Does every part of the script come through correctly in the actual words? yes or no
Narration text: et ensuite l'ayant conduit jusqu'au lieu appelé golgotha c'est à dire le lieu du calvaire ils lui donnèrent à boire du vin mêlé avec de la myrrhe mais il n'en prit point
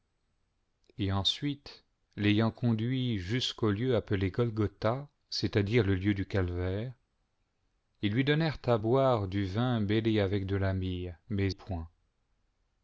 no